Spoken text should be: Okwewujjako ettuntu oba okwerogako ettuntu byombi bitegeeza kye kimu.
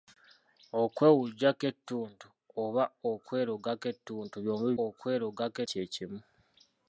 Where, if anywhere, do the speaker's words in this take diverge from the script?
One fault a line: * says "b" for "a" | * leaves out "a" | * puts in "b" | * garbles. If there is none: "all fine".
* says "okwerogako" for "bitegeeza"